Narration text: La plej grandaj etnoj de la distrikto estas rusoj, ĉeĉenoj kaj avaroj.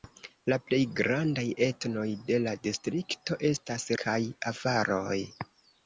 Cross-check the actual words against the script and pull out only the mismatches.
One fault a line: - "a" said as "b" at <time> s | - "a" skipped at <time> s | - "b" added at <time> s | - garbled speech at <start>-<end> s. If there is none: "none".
- "rusoj ĉeĉenoj" skipped at 3.9 s